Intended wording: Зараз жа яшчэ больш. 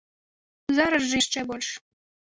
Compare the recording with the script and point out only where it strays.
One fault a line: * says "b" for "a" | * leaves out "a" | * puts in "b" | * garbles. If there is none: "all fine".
all fine